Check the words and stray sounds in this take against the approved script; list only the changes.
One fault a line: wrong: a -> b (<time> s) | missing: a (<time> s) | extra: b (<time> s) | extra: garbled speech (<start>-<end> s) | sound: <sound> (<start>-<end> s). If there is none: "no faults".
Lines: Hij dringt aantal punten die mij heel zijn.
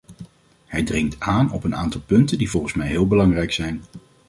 extra: aan op een (1.2 s)
extra: volgens (2.5 s)
extra: belangrijk (3.1 s)